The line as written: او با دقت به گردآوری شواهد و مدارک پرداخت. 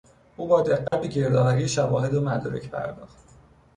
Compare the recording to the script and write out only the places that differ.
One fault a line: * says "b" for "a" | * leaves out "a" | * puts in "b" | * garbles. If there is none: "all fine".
all fine